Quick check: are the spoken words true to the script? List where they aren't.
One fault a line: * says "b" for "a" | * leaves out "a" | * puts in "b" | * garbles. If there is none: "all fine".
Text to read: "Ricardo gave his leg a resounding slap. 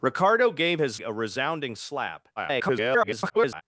* leaves out "leg"
* garbles